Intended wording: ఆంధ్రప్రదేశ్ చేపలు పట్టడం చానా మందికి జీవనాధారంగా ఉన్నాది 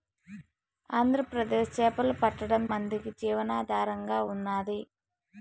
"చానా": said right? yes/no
no